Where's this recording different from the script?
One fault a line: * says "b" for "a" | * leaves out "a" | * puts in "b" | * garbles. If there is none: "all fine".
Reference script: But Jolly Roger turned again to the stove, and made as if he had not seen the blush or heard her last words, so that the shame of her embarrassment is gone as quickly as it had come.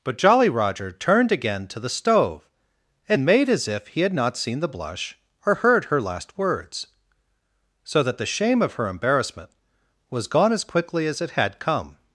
* says "was" for "is"